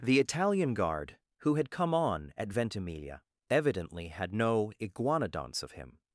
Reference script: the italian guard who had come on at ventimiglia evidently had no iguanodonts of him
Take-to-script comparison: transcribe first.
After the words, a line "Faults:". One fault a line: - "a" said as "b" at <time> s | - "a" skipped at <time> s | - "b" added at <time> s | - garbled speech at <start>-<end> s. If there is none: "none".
the italian guard who had come on at ventimiglia evidently had no iguanodonts of him
Faults:
none